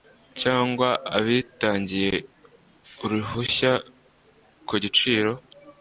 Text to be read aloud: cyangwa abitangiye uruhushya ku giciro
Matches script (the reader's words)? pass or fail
pass